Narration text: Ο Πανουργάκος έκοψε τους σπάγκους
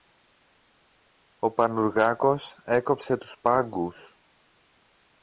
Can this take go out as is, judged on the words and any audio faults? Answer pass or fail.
pass